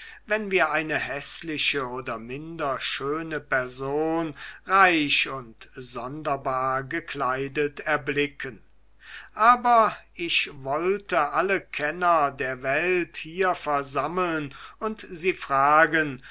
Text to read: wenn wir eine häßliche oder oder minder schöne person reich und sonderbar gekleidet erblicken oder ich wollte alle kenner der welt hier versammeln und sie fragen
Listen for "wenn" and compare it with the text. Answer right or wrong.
right